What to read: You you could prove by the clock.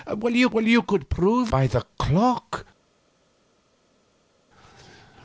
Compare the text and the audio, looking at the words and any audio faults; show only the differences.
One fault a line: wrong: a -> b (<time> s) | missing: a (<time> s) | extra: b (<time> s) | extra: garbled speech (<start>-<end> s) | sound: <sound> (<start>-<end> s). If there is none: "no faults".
no faults